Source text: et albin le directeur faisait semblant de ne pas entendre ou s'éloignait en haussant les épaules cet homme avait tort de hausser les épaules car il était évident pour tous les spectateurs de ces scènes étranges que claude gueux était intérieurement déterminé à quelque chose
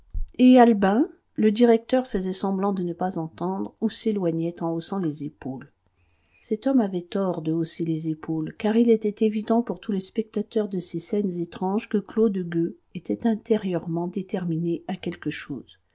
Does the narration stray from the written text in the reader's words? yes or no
no